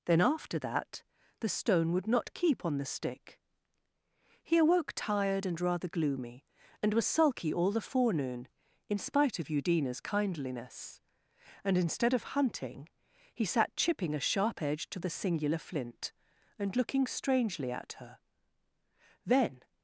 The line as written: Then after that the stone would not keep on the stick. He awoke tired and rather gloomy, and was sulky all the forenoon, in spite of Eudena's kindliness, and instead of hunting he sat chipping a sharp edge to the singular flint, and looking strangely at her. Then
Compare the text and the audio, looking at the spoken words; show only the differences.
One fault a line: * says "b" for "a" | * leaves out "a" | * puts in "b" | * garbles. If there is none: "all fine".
all fine